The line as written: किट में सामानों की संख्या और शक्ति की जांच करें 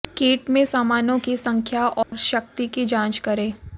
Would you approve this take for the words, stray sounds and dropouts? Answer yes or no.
no